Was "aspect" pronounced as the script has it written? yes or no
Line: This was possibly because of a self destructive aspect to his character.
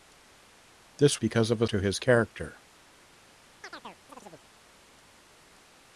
no